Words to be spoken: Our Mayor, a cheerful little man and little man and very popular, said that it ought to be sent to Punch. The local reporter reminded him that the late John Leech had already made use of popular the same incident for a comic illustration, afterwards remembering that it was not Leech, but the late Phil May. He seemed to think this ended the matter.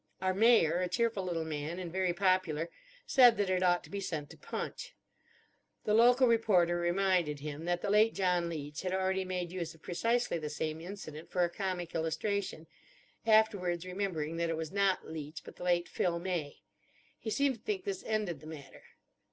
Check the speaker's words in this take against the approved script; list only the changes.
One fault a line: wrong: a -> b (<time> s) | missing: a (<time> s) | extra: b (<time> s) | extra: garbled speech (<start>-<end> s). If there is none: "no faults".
missing: little man and (1.9 s)
wrong: popular -> precisely (9.8 s)